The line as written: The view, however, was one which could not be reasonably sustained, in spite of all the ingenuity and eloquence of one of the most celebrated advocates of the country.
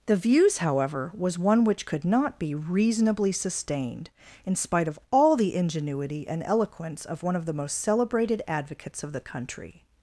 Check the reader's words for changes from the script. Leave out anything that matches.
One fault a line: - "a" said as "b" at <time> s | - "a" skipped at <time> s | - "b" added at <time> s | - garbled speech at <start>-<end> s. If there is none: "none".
- "view" said as "views" at 0.1 s